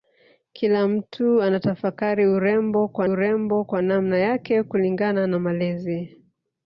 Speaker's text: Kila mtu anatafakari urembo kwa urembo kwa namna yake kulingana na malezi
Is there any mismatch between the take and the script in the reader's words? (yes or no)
no